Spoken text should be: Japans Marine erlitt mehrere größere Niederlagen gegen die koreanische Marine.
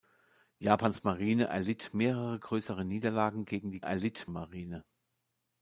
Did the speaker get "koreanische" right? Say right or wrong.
wrong